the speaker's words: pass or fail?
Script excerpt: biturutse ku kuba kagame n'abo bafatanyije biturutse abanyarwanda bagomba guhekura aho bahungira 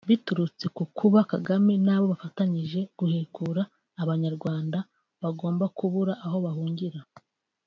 fail